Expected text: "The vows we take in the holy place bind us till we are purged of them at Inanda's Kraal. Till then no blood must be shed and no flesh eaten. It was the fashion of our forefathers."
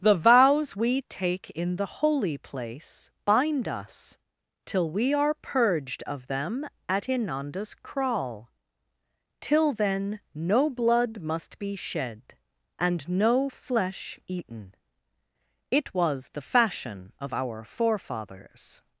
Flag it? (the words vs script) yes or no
no